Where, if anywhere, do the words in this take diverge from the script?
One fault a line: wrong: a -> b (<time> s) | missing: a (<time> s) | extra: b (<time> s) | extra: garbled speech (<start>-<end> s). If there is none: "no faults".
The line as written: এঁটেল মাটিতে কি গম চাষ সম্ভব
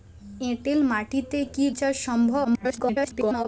missing: গম (1.6 s)
extra: garbled speech (2.4-3.5 s)